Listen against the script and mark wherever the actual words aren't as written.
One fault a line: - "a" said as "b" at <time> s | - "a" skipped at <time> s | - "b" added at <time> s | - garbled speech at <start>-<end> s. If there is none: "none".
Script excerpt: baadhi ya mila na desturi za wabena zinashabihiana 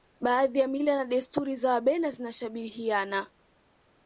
none